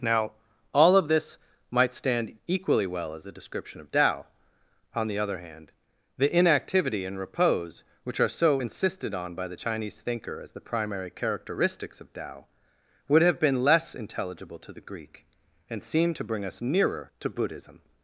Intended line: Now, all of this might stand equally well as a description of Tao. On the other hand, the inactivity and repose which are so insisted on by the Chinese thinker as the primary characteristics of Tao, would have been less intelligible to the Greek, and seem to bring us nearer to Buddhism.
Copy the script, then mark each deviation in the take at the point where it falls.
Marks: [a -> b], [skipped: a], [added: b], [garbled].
Now, all of this might stand equally well as a description of Tao. On the other hand, the inactivity and repose which are so insisted on by the Chinese thinker as the primary characteristics of Tao, would have been less intelligible to the Greek, and seem to bring us nearer to Buddhism.